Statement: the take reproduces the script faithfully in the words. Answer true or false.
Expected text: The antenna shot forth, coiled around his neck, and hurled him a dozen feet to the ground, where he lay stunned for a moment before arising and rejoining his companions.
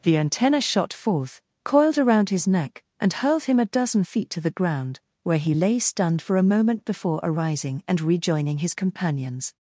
true